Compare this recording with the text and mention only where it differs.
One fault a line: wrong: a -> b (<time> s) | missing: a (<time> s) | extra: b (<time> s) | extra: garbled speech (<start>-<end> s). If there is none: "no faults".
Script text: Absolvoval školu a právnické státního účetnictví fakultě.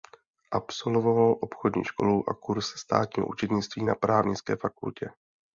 extra: obchodní (1.4 s)
wrong: právnické -> kurz (2.3 s)
extra: na právnické (3.8 s)